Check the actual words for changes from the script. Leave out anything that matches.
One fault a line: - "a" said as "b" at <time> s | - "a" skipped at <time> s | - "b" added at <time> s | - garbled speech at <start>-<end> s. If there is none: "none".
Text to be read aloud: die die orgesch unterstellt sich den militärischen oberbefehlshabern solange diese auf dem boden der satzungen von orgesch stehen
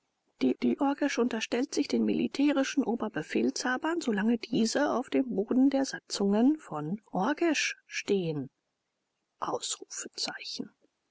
none